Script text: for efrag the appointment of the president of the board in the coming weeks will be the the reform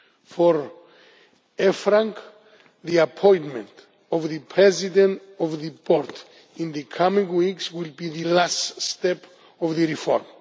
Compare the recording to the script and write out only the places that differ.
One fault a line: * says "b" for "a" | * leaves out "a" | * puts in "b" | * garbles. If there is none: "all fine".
* puts in "last step of"